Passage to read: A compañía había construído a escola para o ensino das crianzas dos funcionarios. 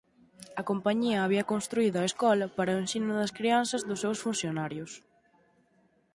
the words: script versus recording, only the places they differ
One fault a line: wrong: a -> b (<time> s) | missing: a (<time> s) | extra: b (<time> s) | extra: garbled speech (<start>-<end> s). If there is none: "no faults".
extra: seus (4.0 s)